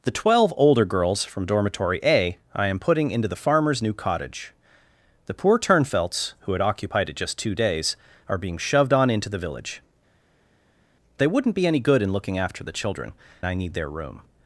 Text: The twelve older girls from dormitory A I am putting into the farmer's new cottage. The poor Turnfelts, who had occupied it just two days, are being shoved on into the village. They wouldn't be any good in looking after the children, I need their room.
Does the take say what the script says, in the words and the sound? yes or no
yes